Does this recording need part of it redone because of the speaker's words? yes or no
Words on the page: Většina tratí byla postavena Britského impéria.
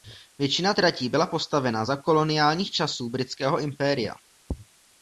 yes